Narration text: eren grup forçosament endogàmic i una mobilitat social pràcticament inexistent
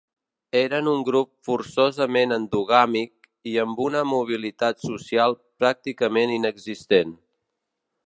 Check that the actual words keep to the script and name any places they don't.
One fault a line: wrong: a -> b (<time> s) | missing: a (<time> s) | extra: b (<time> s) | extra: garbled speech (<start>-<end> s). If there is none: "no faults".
extra: un (0.9 s)
extra: amb (3.7 s)